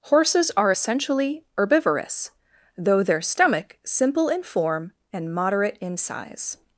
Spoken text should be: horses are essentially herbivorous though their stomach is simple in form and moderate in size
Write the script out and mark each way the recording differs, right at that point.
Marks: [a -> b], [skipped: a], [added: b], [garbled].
horses are essentially herbivorous though their stomach [skipped: is] simple in form and moderate in size